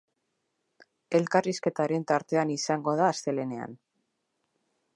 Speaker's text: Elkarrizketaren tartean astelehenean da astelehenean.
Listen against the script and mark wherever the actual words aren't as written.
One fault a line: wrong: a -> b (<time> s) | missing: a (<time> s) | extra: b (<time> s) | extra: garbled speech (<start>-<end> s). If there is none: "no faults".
wrong: astelehenean -> izango (2.5 s)